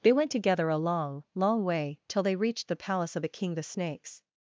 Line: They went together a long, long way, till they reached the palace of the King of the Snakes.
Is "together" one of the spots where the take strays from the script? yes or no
no